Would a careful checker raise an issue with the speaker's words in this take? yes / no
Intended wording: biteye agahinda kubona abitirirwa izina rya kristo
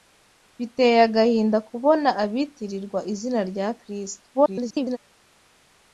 yes